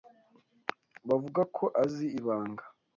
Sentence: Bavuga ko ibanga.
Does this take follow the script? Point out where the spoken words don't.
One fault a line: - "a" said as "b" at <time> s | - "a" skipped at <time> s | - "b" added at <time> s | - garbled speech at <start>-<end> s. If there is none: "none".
- "azi" added at 1.8 s